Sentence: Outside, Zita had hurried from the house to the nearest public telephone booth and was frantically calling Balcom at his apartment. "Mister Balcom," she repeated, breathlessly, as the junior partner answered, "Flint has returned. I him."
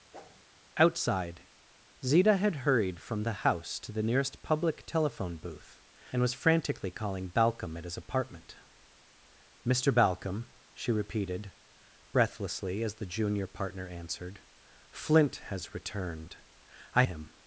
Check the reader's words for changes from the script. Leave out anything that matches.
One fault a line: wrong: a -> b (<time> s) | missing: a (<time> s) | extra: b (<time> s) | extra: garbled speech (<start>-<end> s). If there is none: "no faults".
no faults